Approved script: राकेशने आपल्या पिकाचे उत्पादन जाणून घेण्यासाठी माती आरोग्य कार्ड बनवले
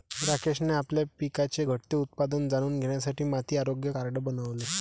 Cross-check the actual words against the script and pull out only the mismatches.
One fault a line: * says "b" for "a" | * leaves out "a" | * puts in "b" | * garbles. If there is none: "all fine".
* puts in "घटते"